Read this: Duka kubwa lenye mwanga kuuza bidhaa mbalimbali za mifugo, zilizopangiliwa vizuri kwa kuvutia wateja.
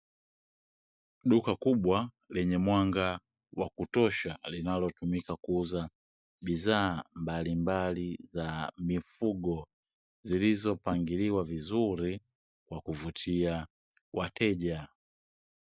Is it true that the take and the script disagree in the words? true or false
true